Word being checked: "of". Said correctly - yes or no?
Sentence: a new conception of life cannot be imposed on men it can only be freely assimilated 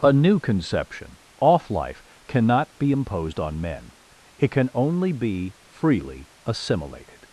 no